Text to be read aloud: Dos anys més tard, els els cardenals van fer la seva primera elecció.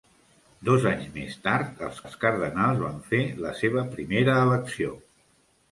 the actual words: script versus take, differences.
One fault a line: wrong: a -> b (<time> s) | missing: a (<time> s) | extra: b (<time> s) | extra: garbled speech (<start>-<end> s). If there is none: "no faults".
no faults